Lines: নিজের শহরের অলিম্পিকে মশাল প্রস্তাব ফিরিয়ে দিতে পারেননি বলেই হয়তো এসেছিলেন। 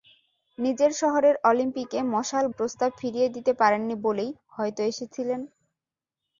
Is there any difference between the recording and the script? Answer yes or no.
no